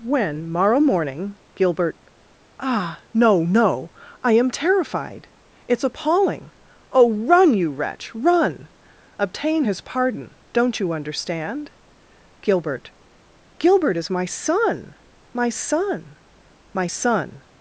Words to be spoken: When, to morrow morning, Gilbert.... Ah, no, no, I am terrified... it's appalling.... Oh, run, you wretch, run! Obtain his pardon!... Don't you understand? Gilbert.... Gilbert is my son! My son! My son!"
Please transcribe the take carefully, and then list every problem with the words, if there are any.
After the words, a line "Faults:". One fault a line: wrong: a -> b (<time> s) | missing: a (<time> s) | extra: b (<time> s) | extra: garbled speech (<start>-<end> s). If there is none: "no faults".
When, morrow morning, Gilbert.... Ah, no, no, I am terrified... it's appalling.... Oh, run, you wretch, run! Obtain his pardon!... Don't you understand? Gilbert.... Gilbert is my son! My son! My son!"
Faults:
missing: to (0.5 s)